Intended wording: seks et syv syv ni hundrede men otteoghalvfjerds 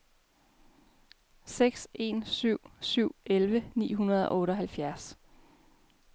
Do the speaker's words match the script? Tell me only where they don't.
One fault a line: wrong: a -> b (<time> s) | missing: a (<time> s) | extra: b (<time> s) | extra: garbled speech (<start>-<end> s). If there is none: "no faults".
wrong: et -> en (1.9 s)
extra: elleve (3.2 s)
wrong: men -> og (4.3 s)